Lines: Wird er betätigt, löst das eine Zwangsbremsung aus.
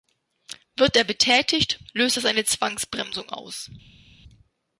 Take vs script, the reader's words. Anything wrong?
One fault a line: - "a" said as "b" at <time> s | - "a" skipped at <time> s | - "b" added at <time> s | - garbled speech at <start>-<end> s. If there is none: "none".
none